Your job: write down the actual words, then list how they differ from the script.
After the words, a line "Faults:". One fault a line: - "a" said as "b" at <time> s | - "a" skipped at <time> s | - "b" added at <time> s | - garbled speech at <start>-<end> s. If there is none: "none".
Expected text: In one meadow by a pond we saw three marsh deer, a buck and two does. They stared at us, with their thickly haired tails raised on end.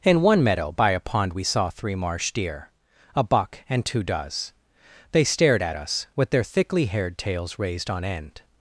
In one meadow by a pond we saw three marsh deer, a buck and two does. They stared at us, with their thickly haired tails raised on end.
Faults:
none